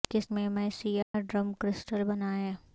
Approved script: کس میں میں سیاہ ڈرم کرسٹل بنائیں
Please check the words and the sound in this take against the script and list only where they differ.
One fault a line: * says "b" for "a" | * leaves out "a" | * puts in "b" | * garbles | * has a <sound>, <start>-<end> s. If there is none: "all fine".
* has a dropout, 1.0-1.1 s